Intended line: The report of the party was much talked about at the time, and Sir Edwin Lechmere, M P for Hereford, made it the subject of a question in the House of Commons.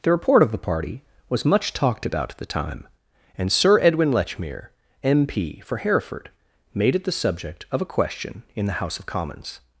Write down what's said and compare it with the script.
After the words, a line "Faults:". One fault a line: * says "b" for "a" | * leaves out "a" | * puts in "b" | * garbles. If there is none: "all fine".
The report of the party was much talked about at the time, and Sir Edwin Lechmere, M P for Hereford, made it the subject of a question in the House of Commons.
Faults:
all fine